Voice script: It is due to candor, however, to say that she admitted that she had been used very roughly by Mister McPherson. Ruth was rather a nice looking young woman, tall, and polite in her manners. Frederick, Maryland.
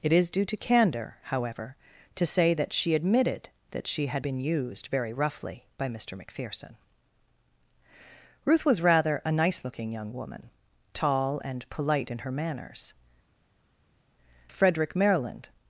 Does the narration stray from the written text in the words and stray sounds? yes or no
no